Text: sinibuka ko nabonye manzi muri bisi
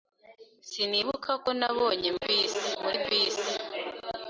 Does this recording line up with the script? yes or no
no